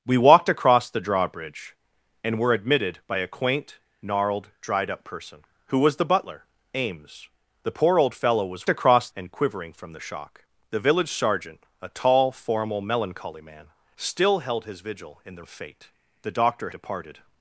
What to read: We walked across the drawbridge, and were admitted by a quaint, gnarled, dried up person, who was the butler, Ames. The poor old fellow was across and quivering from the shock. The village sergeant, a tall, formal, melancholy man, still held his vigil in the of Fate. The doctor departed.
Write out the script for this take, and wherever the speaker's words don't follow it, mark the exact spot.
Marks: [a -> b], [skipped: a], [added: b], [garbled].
We walked across the drawbridge, and were admitted by a quaint, gnarled, dried up person, who was the butler, Ames. The poor old fellow was across and quivering from the shock. The village sergeant, a tall, formal, melancholy man, still held his vigil in the of Fate. The doctor departed.